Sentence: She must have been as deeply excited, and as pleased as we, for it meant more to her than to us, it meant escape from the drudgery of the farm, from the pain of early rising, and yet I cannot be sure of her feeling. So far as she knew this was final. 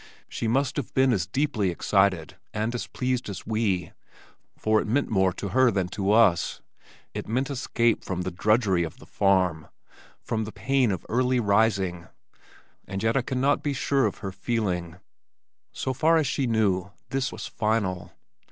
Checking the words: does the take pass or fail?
pass